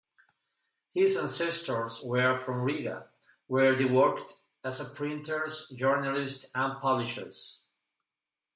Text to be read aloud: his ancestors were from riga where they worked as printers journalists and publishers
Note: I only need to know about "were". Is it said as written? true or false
true